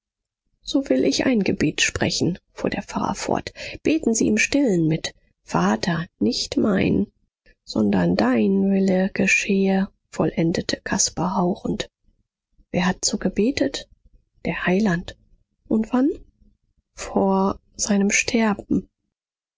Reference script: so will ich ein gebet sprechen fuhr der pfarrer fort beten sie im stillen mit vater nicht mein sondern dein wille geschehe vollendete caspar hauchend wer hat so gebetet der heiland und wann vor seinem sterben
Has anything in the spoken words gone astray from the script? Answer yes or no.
no